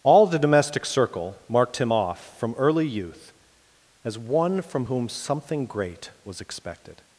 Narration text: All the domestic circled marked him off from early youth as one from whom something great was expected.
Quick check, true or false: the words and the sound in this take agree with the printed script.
false